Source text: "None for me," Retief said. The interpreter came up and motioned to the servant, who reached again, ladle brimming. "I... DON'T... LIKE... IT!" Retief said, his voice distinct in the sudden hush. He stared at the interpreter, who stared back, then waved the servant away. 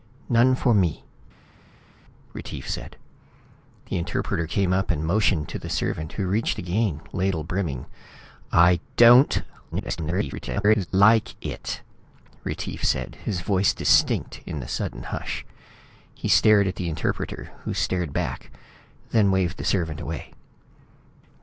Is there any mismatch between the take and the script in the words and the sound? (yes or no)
yes